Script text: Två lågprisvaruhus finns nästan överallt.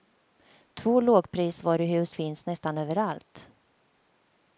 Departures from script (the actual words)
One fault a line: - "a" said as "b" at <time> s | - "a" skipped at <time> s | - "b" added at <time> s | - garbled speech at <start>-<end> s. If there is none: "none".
none